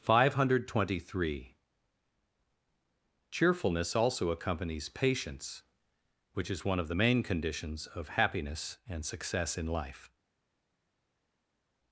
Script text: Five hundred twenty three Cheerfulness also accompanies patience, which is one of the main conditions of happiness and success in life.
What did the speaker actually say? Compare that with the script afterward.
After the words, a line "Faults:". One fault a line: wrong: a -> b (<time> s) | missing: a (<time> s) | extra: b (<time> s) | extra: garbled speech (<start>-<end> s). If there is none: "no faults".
Five hundred twenty three Cheerfulness also accompanies patience, which is one of the main conditions of happiness and success in life.
Faults:
no faults